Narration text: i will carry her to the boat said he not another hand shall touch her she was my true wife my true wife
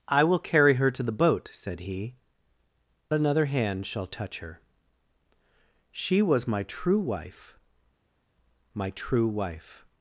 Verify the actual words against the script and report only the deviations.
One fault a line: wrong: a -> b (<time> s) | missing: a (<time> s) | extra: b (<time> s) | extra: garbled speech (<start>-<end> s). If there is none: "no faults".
missing: not (2.1 s)